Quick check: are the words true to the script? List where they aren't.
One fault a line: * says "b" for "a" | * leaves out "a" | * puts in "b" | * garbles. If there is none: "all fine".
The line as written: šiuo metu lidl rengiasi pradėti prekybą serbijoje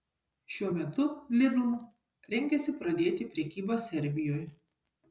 all fine